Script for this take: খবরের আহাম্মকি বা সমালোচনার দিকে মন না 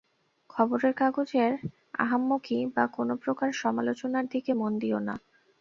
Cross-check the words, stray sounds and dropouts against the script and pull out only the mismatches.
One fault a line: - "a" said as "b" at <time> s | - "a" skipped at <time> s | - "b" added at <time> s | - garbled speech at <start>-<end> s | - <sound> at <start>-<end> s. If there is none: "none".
- "কাগজের" added at 0.9 s
- "কোন প্রকার" added at 2.9 s
- "দিও" added at 4.8 s